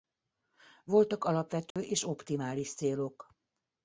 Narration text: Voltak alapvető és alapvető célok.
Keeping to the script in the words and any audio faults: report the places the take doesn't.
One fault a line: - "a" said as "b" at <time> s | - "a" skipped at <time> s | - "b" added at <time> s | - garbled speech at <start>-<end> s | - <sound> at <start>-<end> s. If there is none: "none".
- dropout at 1.7-1.8 s
- "alapvető" said as "optimális" at 2.0 s